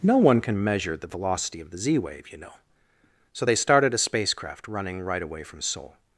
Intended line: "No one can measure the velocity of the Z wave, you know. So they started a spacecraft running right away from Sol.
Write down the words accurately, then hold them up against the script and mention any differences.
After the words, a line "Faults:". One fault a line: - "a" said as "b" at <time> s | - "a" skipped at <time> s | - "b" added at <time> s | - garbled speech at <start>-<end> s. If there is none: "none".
"No one can measure the velocity of the Z wave, you know. So they started a spacecraft running right away from Sol.
Faults:
none